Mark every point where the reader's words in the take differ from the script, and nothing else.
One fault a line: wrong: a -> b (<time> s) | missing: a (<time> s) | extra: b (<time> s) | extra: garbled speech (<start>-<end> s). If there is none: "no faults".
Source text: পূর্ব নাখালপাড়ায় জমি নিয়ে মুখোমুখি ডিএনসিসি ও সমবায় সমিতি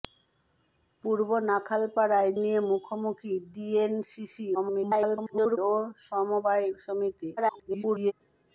missing: জমি (2.3 s)
extra: garbled speech (4.5-5.6 s)
extra: garbled speech (7.4-8.1 s)